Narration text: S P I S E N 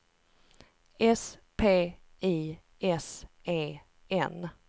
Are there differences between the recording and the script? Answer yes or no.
no